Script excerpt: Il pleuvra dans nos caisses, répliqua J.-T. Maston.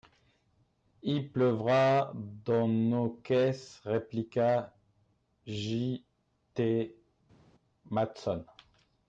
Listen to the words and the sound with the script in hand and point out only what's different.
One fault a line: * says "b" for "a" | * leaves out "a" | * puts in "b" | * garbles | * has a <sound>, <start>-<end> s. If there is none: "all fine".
all fine